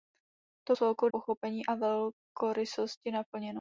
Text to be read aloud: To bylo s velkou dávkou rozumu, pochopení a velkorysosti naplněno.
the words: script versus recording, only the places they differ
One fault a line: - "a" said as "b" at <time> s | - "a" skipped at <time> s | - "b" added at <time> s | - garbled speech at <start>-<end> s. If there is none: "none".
- "bylo" skipped at 0.8 s
- "dávkou rozumu" skipped at 1.1 s